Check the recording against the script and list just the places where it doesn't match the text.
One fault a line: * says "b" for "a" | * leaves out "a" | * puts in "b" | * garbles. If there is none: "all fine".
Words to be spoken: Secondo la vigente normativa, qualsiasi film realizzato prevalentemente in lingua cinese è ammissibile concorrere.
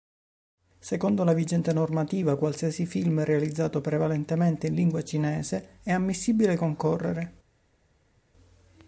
all fine